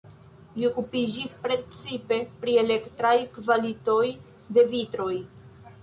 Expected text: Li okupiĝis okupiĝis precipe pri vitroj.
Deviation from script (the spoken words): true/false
true